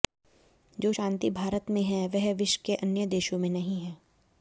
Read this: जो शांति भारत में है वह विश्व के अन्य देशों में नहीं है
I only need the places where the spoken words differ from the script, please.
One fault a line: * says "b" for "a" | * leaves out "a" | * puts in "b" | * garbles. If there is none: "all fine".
all fine